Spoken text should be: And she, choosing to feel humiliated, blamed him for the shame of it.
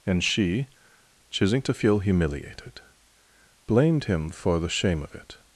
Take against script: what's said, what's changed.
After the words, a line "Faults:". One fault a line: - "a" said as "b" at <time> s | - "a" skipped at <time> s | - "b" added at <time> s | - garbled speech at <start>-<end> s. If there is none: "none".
And she, choosing to feel humiliated, blamed him for the shame of it.
Faults:
none